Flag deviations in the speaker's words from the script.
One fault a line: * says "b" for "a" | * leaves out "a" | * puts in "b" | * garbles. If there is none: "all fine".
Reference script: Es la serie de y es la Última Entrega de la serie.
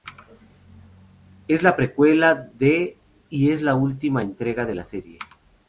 * says "precuela" for "serie"